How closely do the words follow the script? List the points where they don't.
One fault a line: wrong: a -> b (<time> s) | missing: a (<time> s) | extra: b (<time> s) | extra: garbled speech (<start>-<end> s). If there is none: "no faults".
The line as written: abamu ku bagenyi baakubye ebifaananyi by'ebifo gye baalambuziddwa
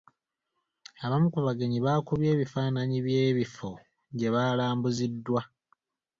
no faults